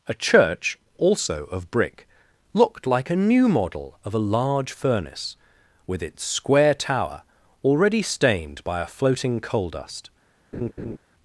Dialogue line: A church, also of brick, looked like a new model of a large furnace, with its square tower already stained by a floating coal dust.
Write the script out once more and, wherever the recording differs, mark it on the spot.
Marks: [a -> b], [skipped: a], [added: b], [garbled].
A church, also of brick, looked like a new model of a large furnace, with its square tower already stained by a floating coal dust.